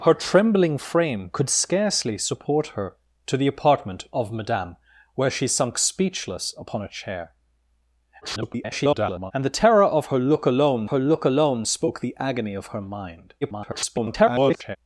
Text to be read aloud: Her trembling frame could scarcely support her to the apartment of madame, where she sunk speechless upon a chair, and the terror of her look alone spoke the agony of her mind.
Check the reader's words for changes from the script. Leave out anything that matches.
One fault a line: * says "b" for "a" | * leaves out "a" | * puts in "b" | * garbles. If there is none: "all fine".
* garbles
* puts in "her look alone"
* garbles